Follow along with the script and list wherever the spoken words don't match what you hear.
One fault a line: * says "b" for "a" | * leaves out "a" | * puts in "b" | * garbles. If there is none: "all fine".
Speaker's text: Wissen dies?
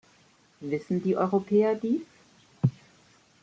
* puts in "die Europäer"